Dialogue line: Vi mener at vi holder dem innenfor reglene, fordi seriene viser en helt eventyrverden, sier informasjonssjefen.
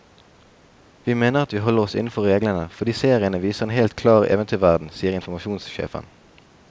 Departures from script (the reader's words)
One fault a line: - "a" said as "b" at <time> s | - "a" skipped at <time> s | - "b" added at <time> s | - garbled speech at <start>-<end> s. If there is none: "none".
- "dem" said as "oss" at 1.8 s
- "klar" added at 4.0 s